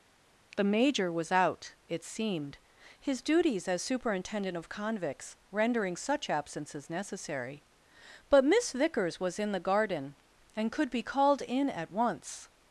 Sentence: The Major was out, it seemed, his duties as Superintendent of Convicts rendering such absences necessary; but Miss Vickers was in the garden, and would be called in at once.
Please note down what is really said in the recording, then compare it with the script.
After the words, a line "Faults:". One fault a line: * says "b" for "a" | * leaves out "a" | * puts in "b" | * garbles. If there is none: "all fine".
The Major was out, it seemed, his duties as Superintendent of Convicts rendering such absences necessary; but Miss Vickers was in the garden, and could be called in at once.
Faults:
* says "could" for "would"